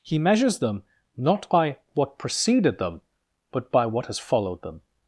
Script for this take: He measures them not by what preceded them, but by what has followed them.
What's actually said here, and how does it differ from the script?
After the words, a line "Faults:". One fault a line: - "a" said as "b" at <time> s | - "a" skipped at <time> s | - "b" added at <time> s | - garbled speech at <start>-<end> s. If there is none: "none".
He measures them not by what preceded them, but by what has followed them.
Faults:
none